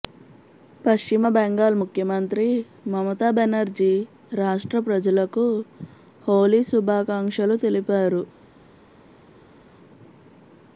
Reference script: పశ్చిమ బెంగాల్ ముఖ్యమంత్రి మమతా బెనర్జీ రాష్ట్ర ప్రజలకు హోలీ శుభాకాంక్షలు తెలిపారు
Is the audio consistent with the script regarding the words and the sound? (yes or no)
yes